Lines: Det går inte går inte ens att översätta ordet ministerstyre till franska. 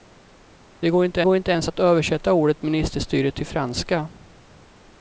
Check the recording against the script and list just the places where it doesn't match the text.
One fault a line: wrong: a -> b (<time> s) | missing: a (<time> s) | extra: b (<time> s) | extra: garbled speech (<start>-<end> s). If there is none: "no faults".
no faults